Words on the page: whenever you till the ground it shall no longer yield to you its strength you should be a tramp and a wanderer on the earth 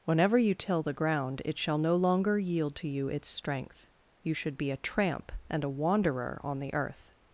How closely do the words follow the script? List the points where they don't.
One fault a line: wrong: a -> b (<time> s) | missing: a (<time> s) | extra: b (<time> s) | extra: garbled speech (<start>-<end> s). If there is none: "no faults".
no faults